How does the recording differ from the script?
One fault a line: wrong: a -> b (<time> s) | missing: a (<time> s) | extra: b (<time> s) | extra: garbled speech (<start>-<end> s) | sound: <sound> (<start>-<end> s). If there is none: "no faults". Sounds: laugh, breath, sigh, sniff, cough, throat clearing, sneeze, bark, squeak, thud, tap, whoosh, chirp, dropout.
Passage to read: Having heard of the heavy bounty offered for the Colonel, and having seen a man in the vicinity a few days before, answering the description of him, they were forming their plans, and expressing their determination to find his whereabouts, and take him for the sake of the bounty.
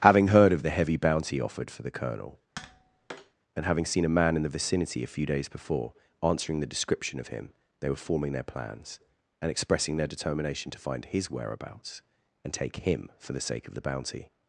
sound: tap (2.6-3.4 s)